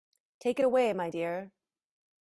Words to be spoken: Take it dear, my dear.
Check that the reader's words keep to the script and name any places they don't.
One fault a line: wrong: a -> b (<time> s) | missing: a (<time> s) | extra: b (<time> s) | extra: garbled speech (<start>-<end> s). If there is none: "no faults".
wrong: dear -> away (0.6 s)